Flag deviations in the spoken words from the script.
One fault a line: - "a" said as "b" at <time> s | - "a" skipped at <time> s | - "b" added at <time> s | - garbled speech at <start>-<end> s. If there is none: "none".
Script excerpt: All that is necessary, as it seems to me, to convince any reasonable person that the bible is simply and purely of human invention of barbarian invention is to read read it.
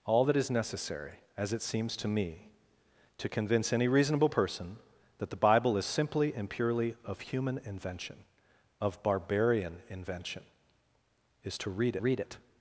none